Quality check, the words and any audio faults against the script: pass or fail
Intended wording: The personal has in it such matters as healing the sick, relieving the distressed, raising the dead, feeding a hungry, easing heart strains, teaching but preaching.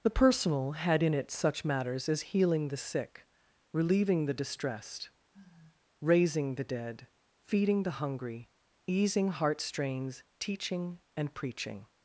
fail